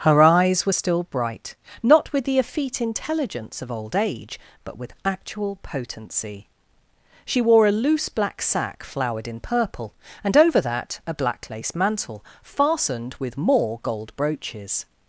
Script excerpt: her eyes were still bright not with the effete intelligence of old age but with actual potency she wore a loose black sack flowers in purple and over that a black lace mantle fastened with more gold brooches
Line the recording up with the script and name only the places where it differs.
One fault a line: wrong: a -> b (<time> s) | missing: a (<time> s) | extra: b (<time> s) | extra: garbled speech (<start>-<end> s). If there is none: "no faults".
wrong: flowers -> flowered (8.8 s)